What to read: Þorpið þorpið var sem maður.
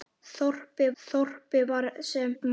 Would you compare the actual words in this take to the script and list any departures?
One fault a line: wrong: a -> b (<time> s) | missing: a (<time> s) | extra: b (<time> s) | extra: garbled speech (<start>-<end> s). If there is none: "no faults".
no faults